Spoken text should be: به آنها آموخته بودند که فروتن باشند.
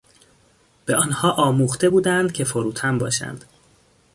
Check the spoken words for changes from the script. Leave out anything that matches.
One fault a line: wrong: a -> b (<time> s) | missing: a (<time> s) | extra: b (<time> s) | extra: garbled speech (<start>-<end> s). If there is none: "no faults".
no faults